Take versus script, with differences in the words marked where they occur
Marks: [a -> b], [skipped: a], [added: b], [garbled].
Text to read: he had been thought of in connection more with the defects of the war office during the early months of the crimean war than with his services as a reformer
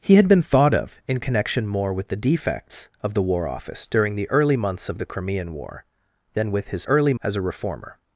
he had been thought of in connection more with the defects of the war office during the early months of the crimean war than with his [services -> early] as a reformer